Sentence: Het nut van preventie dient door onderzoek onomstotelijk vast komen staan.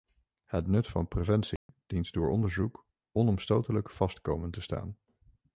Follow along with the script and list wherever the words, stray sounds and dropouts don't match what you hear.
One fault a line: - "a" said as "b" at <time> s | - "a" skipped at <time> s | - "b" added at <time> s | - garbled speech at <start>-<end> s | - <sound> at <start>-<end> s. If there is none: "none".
- dropout at 1.6-1.7 s
- "te" added at 4.5 s